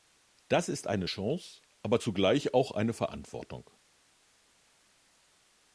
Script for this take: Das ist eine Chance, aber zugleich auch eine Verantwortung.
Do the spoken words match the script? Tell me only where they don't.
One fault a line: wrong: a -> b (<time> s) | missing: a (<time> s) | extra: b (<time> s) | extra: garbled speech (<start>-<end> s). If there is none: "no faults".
no faults